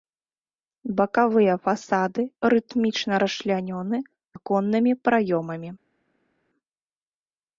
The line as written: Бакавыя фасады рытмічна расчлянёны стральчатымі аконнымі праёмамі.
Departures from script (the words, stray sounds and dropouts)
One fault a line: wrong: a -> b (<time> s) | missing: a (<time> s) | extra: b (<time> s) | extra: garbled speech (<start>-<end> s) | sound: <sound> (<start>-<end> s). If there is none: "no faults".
missing: стральчатымі (4.0 s)